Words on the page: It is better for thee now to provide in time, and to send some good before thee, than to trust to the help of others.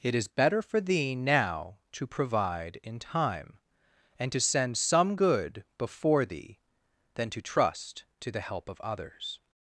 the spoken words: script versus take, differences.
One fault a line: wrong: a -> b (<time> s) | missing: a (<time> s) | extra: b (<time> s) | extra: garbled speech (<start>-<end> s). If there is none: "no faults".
no faults